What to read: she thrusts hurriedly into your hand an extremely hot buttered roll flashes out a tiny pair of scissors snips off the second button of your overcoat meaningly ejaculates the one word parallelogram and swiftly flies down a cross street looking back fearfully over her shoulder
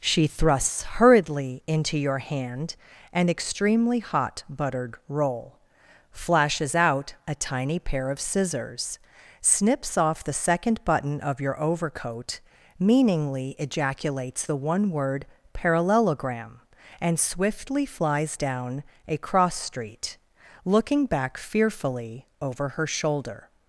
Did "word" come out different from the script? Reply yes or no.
no